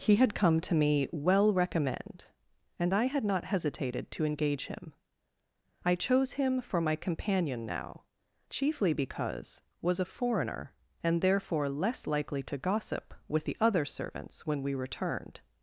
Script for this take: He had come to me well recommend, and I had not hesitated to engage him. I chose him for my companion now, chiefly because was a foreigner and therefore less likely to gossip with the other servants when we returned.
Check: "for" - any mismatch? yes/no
no